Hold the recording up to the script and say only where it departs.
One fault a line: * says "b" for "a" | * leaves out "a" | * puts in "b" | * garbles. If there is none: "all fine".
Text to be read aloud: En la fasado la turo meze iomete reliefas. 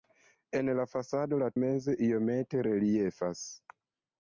* leaves out "turo"